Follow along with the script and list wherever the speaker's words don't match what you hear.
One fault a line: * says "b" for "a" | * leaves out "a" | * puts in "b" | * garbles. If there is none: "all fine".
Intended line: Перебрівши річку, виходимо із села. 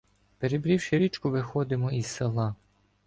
all fine